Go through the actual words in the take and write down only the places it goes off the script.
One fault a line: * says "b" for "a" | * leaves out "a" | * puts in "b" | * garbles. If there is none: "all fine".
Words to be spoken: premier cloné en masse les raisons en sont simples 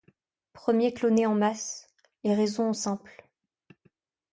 * leaves out "sont"